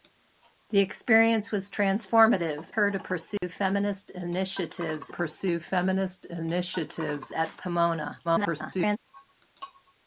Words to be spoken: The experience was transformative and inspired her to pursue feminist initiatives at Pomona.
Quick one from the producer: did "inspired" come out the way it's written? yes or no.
no